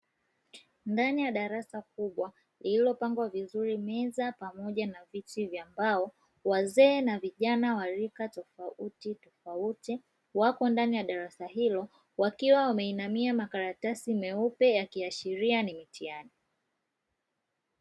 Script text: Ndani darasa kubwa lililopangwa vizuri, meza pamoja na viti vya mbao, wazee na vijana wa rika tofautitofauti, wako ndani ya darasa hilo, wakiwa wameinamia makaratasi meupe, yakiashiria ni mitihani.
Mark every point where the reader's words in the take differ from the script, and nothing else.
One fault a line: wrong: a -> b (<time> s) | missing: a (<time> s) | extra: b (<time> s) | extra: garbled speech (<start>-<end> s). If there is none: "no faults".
extra: ya (1.2 s)